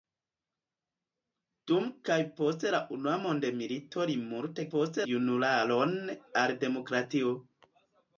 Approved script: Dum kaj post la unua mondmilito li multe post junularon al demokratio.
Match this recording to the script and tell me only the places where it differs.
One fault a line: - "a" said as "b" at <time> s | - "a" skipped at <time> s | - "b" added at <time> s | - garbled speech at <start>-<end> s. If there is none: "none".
none